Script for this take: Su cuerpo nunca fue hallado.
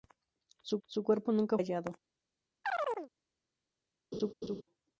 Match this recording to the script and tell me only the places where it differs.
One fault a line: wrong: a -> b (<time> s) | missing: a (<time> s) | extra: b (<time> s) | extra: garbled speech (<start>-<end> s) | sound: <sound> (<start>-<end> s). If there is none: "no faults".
extra: su (0.9 s)
missing: fue (1.6 s)
sound: chirp (2.6-3.1 s)
sound: laugh (4.1-4.6 s)